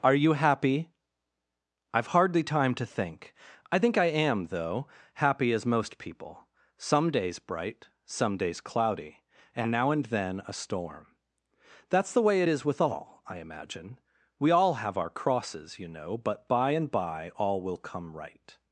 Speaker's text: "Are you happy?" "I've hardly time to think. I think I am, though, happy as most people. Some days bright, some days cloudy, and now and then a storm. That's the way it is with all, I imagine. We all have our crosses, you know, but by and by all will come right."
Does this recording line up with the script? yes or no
yes